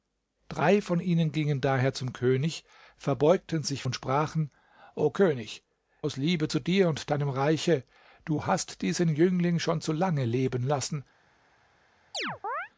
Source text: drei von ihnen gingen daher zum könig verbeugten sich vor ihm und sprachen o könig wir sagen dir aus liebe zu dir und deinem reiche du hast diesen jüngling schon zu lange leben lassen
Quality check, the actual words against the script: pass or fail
fail